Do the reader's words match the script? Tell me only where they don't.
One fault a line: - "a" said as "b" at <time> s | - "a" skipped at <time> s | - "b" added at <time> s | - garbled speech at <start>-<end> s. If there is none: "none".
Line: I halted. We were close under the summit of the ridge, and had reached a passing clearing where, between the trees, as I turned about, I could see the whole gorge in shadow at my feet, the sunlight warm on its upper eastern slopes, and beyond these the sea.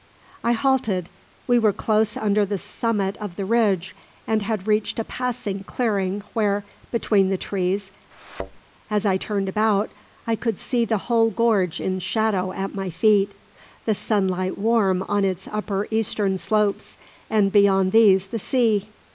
none